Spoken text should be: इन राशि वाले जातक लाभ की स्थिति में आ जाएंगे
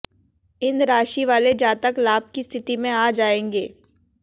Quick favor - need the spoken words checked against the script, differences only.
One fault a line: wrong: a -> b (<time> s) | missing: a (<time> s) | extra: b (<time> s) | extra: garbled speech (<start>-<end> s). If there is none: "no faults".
no faults